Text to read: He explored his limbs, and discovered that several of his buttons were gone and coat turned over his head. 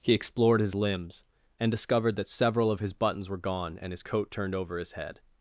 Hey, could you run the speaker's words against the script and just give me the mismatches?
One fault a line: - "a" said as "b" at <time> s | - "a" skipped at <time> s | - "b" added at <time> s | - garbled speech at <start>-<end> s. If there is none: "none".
- "his" added at 3.9 s